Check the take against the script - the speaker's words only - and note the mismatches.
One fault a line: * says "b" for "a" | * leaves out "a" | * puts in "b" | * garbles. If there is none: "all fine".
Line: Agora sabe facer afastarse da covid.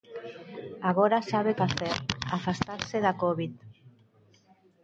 all fine